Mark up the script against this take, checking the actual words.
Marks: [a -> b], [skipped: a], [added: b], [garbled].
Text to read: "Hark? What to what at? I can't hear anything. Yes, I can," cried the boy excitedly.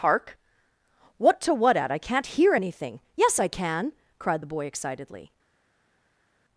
"Hark? What to what at? I can't hear anything. Yes, I can," cried the boy excitedly.